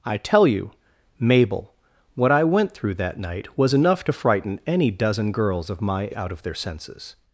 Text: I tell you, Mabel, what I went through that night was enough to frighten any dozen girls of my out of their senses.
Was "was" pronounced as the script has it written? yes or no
yes